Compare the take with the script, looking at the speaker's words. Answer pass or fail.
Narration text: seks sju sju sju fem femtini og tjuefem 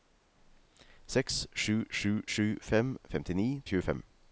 pass